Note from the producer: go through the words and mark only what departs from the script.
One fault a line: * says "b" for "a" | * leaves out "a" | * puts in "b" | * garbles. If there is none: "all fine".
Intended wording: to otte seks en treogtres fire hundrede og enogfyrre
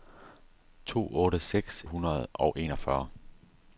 * leaves out "en treogtres fire"